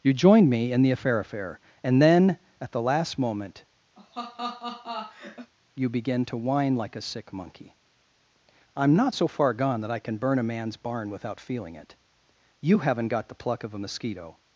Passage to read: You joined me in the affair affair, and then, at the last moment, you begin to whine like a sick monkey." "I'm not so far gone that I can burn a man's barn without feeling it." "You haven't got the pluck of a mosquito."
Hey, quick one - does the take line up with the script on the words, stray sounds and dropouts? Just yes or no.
no